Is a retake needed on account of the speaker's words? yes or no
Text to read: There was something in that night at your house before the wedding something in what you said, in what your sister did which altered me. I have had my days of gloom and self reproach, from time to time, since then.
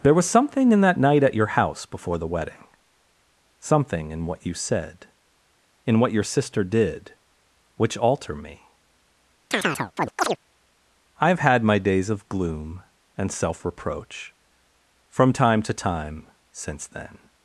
yes